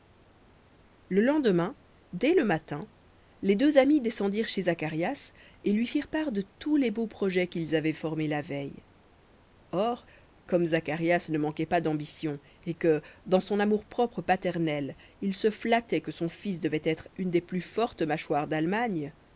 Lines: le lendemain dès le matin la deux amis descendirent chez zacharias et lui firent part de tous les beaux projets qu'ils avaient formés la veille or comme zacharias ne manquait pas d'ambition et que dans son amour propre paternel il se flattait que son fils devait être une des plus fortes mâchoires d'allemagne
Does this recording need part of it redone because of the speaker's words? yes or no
yes